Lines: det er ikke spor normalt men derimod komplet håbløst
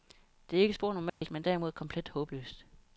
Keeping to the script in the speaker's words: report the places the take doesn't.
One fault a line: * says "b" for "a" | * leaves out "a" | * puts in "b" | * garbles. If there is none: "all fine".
all fine